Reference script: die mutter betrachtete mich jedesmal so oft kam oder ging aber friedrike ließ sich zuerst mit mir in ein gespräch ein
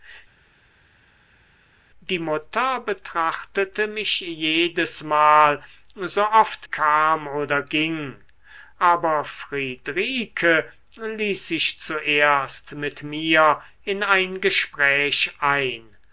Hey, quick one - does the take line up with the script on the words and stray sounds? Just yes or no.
yes